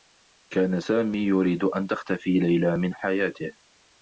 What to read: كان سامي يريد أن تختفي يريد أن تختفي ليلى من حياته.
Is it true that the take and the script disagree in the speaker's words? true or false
true